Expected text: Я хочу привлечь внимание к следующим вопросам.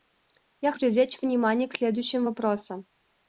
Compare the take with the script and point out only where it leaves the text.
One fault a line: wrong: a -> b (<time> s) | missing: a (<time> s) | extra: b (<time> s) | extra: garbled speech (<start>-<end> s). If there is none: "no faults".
missing: хочу (0.7 s)